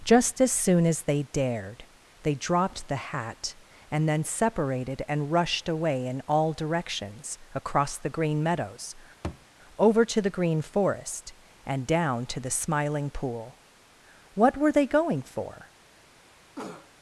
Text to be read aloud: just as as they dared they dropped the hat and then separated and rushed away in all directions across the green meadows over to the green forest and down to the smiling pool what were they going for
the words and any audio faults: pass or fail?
fail